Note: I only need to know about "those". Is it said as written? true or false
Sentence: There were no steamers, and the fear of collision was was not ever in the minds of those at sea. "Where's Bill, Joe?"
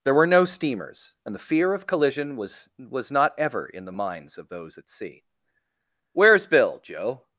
true